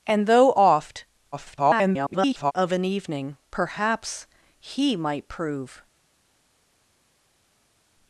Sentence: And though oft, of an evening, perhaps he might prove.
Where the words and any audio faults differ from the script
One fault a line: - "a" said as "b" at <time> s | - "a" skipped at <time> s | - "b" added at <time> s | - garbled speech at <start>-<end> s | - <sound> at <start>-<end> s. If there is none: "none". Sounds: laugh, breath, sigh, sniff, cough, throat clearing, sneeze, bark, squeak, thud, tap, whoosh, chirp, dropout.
- garbled speech at 1.3-2.5 s